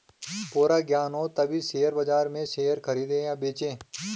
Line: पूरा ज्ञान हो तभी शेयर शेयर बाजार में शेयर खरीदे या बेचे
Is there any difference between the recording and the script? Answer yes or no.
yes